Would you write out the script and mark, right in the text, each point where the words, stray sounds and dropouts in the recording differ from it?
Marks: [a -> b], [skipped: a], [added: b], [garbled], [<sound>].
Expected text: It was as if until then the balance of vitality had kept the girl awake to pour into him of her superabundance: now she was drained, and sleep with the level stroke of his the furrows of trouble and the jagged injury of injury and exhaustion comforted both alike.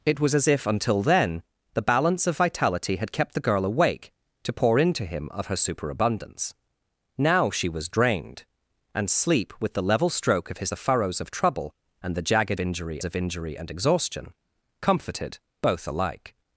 It was as if until then the balance of vitality had kept the girl awake to pour into him of her superabundance: now she was drained, and sleep with the level stroke of his the furrows of trouble and the jagged injury of injury and exhaustion comforted both alike.